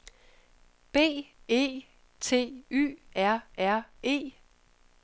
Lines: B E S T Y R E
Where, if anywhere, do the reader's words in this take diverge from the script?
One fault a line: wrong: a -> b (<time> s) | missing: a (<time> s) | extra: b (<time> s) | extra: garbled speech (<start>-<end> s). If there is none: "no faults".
missing: S (1.9 s)
extra: R (3.6 s)